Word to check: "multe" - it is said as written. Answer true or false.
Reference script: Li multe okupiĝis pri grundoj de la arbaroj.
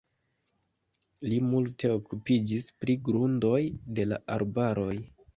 true